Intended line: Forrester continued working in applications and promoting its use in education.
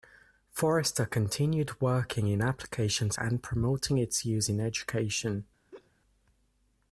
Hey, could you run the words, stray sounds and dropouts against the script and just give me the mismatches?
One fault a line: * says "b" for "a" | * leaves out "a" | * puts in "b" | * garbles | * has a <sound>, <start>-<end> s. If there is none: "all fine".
* has a laugh, 5.7-5.9 s